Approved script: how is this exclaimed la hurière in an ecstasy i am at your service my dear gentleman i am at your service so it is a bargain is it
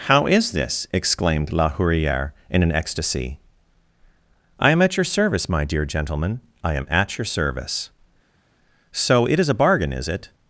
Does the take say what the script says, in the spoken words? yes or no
yes